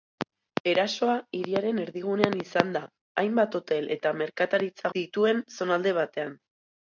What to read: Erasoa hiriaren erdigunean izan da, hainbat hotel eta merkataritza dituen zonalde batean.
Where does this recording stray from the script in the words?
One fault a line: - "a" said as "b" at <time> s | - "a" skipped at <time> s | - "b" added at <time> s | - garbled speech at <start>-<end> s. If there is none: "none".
none